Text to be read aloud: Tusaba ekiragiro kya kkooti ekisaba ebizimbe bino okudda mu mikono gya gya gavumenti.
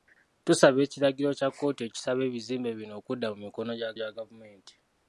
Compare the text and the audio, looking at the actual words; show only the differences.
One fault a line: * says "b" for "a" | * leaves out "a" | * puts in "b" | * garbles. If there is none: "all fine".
all fine